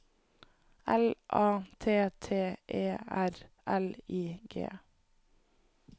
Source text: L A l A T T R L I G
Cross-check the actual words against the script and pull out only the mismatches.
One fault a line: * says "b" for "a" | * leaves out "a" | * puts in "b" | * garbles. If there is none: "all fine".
* says "T" for "l A"
* says "E" for "T"